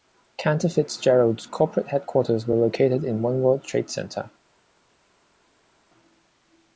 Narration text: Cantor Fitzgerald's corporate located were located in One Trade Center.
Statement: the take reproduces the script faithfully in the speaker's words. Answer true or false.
false